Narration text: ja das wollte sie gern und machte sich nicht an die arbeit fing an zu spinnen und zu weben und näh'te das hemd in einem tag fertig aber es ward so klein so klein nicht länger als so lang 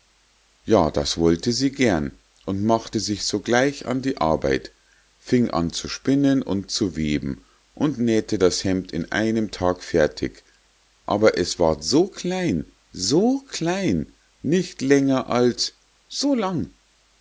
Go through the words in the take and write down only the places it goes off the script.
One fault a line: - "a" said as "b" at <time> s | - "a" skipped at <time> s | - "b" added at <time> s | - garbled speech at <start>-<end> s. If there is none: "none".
- "nicht" said as "sogleich" at 3.2 s